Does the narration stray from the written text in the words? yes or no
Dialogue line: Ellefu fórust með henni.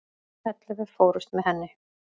no